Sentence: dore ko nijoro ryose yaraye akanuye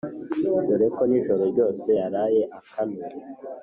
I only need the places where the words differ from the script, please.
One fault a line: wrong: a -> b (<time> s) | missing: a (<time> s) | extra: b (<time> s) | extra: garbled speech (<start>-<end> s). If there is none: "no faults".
no faults